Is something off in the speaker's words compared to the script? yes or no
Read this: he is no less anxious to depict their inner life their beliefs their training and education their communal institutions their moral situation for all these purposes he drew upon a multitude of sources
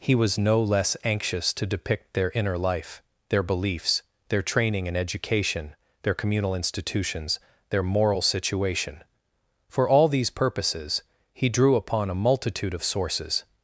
yes